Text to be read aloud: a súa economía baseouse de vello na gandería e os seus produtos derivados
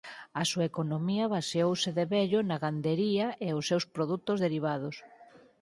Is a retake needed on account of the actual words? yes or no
no